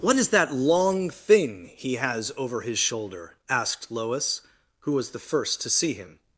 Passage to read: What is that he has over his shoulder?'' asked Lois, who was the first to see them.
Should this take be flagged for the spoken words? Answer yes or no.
yes